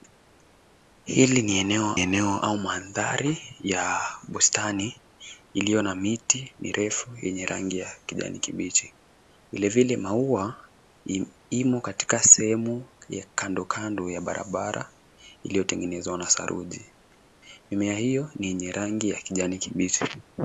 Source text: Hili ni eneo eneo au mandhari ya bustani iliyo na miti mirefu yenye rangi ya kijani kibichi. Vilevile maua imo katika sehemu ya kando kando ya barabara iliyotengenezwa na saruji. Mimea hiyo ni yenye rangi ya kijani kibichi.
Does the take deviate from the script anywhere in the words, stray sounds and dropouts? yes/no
no